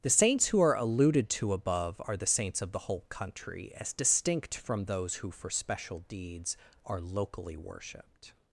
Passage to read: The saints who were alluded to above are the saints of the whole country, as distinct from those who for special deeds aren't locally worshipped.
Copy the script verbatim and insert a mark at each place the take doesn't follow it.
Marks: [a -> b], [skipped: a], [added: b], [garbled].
The saints who [were -> are] alluded to above are the saints of the whole country, as distinct from those who for special deeds [aren't -> are] locally worshipped.